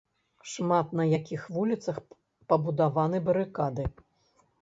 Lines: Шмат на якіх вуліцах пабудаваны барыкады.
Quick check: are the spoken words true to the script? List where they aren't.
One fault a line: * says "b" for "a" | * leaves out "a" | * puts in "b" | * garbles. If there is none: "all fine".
all fine